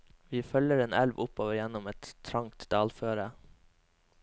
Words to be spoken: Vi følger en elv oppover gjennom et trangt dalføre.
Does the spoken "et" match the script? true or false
true